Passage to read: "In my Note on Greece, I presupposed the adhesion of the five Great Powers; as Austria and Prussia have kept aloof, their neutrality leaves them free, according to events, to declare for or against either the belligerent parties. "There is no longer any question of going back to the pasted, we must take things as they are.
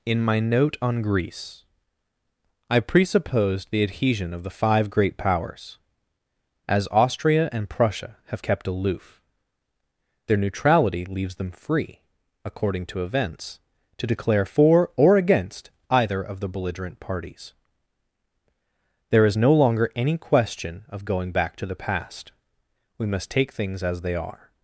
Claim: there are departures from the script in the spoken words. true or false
true